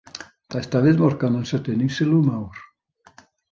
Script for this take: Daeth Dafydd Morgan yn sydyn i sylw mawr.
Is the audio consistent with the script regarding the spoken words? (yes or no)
yes